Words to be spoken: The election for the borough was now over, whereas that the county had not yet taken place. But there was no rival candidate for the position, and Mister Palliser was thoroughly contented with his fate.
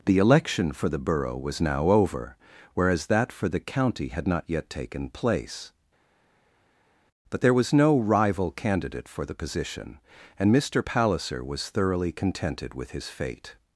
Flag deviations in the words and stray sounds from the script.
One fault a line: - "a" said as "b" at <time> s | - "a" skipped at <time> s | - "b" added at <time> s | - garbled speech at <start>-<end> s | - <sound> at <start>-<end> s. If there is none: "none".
- "for" added at 3.3 s